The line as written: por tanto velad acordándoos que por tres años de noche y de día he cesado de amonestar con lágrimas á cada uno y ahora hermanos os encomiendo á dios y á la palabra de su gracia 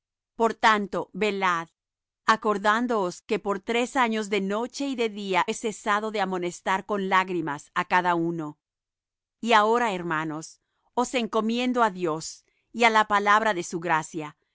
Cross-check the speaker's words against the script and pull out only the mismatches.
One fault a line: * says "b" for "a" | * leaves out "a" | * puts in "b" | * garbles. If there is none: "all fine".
all fine